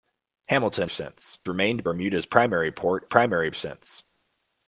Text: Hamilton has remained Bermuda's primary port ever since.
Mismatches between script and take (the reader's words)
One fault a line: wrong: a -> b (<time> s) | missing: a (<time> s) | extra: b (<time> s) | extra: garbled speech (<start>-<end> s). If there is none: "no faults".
wrong: has -> since (0.9 s)
wrong: ever -> primary (3.0 s)